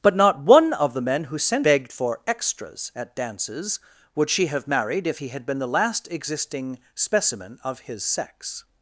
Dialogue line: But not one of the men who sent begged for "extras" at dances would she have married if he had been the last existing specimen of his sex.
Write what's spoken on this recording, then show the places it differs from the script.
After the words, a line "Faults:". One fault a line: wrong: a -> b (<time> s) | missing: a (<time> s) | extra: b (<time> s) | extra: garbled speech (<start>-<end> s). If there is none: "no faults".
But not one of the men who sent begged for "extras" at dances would she have married if he had been the last existing specimen of his sex.
Faults:
no faults